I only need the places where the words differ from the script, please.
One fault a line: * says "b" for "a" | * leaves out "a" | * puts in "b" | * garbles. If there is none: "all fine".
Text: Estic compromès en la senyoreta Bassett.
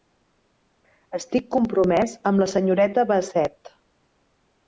* says "amb" for "en"